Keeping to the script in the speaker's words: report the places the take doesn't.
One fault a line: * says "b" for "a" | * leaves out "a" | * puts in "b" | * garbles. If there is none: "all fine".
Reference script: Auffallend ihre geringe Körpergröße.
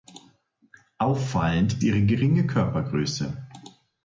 all fine